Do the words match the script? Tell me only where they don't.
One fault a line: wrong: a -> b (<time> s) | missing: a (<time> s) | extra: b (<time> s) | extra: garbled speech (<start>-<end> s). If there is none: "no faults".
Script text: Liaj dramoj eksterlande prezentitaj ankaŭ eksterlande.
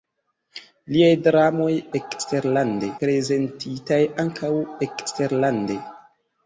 no faults